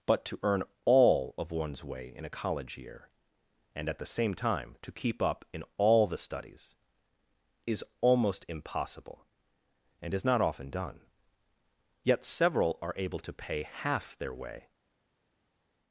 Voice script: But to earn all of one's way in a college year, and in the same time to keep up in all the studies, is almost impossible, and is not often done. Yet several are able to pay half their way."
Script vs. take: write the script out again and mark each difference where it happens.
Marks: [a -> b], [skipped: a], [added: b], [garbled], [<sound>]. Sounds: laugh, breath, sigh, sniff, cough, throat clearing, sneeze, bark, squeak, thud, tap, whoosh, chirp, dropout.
But to earn all of one's way in a college year, and [in -> at] the same time to keep up in all the studies, is almost impossible, and is not often done. Yet several are able to pay half their way."